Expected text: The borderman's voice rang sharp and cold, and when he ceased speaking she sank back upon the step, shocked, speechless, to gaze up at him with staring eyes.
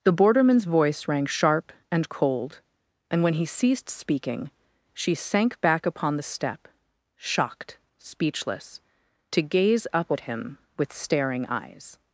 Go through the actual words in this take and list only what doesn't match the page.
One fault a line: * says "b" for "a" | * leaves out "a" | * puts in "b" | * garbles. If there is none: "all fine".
all fine